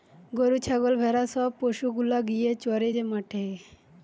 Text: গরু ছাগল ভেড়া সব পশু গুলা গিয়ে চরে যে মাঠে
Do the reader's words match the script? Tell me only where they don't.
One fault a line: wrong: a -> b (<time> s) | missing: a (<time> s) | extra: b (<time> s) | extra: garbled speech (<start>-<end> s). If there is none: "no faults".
no faults